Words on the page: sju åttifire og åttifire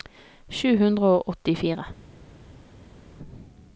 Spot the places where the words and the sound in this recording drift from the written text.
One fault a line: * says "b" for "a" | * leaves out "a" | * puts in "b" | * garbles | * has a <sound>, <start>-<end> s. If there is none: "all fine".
* says "hundre" for "åttifire"